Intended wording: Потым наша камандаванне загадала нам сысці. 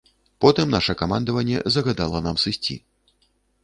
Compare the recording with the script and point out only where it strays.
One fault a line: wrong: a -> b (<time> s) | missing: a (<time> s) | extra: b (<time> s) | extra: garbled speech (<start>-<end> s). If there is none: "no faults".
no faults